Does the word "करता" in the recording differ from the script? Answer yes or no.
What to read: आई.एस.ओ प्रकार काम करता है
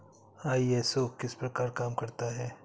no